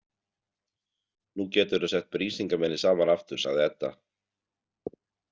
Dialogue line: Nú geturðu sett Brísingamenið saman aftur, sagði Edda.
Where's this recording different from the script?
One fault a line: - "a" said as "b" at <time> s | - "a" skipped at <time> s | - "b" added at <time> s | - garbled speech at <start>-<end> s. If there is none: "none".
none